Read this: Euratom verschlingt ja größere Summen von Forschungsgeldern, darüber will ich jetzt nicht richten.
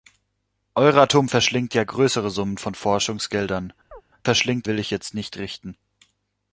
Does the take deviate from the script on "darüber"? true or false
true